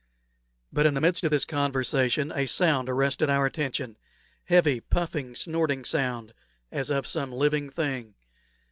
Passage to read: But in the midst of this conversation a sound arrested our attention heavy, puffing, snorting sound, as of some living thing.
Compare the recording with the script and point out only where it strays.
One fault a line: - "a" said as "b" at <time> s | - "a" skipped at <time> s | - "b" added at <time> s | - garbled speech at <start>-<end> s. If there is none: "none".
none